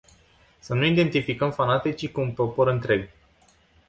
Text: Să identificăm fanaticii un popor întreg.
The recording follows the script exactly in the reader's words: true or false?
false